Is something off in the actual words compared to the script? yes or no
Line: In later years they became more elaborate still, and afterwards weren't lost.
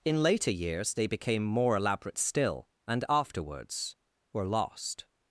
yes